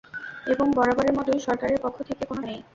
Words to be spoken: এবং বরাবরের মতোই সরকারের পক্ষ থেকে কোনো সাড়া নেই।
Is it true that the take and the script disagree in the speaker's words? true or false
true